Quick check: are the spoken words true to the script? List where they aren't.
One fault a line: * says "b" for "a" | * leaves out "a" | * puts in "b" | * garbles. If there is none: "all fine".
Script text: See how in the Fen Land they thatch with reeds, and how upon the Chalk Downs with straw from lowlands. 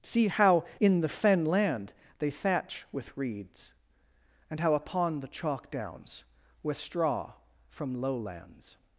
all fine